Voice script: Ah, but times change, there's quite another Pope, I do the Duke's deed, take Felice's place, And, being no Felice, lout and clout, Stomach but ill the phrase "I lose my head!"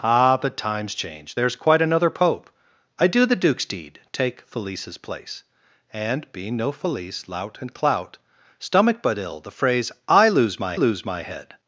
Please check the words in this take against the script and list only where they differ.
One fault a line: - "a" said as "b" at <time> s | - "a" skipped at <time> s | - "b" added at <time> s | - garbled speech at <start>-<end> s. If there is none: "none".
- "lose my" added at 10.7 s